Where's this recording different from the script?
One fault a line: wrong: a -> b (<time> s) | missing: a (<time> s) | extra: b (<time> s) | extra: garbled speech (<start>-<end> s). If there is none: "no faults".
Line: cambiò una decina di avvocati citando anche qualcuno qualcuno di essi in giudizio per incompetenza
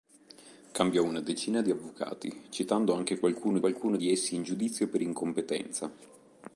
no faults